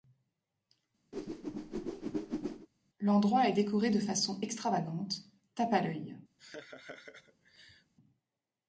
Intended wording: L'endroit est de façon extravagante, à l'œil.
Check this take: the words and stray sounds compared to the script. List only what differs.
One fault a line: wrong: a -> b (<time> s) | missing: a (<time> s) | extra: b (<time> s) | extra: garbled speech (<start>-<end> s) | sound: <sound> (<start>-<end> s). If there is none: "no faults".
sound: whoosh (1.1-2.7 s)
extra: décoré (3.5 s)
extra: tape (5.5 s)
sound: laugh (6.4-7.9 s)